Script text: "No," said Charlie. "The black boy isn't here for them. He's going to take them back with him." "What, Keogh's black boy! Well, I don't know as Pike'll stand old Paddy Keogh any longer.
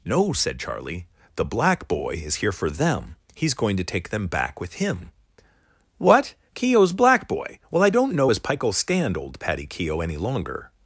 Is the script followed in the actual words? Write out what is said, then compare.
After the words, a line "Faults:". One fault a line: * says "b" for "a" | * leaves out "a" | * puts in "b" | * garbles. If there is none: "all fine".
"No," said Charlie. "The black boy is here for them. He's going to take them back with him." "What, Keogh's black boy! Well, I don't know as Pike'll stand old Paddy Keogh any longer.
Faults:
* says "is" for "isn't"